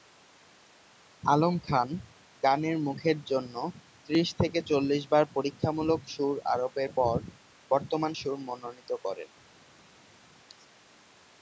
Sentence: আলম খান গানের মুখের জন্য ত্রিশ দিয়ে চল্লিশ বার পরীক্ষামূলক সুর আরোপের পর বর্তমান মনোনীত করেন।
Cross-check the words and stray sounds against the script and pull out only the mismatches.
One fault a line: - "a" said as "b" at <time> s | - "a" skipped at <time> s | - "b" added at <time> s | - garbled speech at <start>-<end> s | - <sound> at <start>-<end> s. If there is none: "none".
- "দিয়ে" said as "থেকে" at 4.4 s
- "সুর" added at 8.1 s